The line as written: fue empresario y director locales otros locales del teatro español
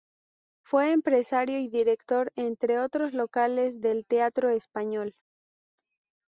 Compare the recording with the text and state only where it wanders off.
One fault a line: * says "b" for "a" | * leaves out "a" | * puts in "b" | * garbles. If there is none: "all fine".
* says "entre" for "locales"